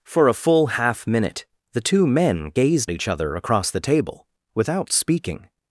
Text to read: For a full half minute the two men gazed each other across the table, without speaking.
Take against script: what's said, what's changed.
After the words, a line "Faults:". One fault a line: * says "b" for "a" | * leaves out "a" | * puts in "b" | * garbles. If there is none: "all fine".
For a full half minute the two men gazed each other across the table, without speaking.
Faults:
all fine